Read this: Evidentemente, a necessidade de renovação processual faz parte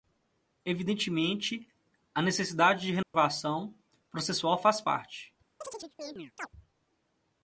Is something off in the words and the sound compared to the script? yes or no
yes